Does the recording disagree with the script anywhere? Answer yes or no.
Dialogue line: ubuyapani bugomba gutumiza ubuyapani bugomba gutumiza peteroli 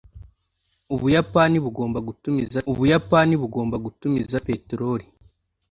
no